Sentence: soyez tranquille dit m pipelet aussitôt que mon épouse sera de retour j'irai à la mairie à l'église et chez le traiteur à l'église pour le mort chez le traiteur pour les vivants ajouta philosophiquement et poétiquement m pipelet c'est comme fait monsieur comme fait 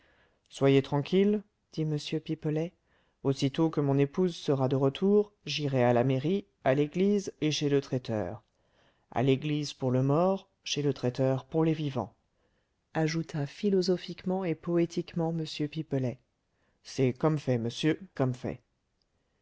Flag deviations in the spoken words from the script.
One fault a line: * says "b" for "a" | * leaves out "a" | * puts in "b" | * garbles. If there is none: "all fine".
all fine